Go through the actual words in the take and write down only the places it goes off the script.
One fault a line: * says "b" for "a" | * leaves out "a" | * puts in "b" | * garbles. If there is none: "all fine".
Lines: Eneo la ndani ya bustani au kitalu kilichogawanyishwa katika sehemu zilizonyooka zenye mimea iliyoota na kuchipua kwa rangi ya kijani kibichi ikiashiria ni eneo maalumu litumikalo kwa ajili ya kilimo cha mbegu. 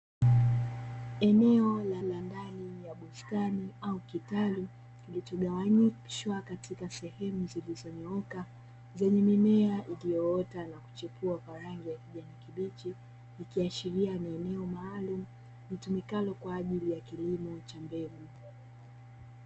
* puts in "la"